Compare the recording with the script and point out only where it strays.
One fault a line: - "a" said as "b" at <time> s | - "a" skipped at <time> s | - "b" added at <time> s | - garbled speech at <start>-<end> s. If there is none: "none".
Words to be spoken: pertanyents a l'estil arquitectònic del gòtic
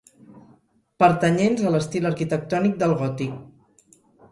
none